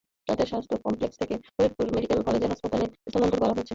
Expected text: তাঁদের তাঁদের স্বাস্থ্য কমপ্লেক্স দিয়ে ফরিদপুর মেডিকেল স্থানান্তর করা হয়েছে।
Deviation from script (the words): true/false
true